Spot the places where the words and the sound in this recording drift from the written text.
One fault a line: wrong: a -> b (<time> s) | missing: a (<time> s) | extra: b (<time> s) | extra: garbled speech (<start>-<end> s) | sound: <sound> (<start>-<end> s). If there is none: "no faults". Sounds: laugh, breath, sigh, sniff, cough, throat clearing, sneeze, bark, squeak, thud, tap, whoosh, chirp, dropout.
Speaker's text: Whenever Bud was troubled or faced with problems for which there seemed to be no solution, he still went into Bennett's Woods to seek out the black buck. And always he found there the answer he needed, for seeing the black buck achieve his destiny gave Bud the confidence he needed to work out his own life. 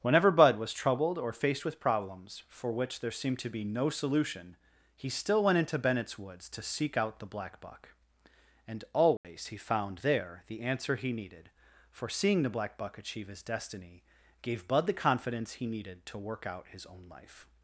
sound: dropout (9.2-9.2 s)